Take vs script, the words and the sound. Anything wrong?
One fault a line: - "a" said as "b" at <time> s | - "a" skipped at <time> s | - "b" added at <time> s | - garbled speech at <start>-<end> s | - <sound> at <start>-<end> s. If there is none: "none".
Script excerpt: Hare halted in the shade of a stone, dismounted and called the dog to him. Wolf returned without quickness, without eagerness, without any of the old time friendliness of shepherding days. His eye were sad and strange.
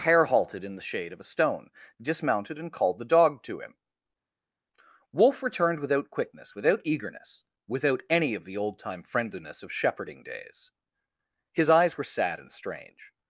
- "eye" said as "eyes" at 11.7 s